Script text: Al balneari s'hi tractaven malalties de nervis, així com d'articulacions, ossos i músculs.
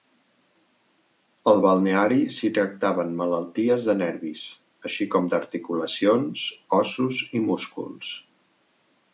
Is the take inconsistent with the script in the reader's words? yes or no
no